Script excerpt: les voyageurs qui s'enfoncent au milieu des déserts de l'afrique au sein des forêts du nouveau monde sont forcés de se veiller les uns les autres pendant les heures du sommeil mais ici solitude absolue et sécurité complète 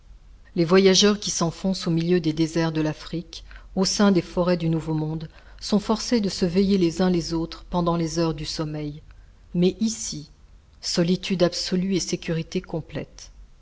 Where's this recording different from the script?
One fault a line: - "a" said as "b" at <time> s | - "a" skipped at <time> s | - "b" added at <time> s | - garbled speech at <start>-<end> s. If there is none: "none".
none